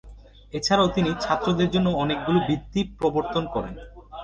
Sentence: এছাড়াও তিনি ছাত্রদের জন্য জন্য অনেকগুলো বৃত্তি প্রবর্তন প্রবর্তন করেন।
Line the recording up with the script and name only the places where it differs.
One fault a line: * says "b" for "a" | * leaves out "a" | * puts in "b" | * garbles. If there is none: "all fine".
* leaves out "জন্য"
* leaves out "প্রবর্তন"